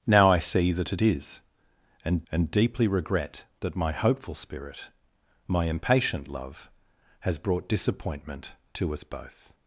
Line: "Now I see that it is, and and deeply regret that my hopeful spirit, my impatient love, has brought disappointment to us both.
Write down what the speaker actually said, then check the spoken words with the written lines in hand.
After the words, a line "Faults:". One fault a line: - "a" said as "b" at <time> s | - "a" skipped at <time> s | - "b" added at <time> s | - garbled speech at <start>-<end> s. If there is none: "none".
"Now I see that it is, and and deeply regret that my hopeful spirit, my impatient love, has brought disappointment to us both.
Faults:
none